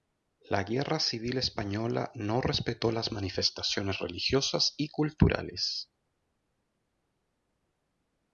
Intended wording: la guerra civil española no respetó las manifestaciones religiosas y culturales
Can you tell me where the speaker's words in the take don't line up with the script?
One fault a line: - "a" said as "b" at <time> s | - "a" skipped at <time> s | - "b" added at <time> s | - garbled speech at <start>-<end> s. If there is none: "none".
none